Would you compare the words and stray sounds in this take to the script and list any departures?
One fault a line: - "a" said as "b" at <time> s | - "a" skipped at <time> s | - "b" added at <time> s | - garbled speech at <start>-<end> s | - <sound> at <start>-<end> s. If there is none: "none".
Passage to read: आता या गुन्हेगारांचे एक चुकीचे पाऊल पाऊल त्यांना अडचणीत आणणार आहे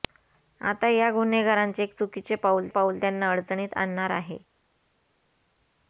none